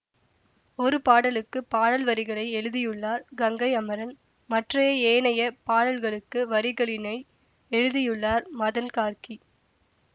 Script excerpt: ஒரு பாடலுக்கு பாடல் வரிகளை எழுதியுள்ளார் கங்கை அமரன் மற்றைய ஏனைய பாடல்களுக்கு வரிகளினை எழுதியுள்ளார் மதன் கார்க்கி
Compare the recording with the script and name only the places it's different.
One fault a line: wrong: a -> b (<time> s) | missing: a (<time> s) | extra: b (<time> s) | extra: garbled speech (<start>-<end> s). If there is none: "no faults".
no faults